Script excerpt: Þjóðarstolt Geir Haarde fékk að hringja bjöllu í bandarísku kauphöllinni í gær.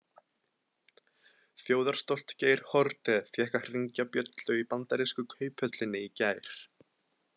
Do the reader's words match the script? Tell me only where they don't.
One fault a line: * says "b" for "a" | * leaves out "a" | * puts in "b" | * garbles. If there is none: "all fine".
all fine